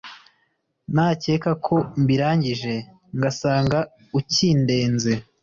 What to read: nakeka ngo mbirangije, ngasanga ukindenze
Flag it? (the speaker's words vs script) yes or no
yes